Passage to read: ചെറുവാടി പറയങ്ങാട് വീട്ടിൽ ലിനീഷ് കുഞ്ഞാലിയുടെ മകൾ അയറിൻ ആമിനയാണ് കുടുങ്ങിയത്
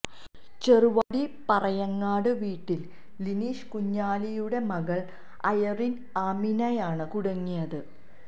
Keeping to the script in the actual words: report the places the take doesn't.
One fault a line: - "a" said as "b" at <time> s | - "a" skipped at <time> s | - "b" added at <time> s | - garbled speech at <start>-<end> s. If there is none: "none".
none